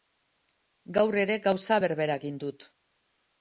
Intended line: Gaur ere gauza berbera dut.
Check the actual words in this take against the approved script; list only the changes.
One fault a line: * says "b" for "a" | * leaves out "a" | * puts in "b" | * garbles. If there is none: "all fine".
* puts in "egin"